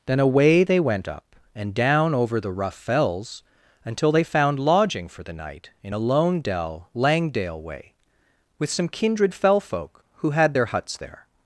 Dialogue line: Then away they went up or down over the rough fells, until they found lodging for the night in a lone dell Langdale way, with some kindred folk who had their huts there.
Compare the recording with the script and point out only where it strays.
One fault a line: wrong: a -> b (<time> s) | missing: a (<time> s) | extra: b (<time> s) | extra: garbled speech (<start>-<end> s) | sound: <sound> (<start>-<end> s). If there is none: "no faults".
wrong: or -> and (1.6 s)
extra: fell (9.3 s)